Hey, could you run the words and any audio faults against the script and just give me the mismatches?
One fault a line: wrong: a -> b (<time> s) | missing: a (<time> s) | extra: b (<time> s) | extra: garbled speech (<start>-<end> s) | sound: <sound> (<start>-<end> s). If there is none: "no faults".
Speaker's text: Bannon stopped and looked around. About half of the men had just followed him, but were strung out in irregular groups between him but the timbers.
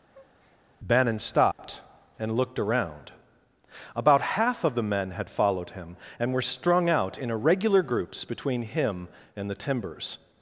sound: breath (0.1-0.6 s)
sound: dropout (1.5-1.6 s)
missing: just (5.3 s)
wrong: but -> and (6.2 s)
wrong: but -> and (9.4 s)